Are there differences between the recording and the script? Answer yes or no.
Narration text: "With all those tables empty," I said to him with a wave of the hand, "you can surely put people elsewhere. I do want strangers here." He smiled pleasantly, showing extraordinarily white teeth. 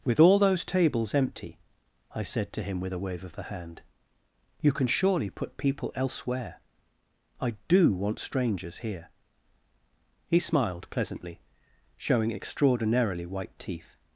no